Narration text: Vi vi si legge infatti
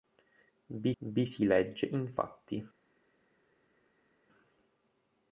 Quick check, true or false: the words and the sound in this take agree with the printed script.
true